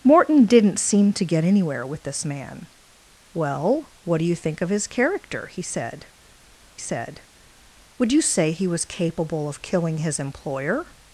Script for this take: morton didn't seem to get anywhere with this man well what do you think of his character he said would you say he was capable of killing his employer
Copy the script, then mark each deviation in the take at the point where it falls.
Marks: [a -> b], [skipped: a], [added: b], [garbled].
morton didn't seem to get anywhere with this man well what do you think of his character he said [added: said] would you say he was capable of killing his employer